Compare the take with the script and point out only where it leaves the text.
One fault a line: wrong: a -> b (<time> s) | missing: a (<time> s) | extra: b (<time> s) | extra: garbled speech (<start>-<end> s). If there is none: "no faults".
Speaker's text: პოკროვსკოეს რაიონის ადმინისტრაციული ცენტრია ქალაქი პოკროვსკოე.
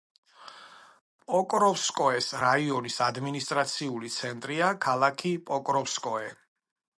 no faults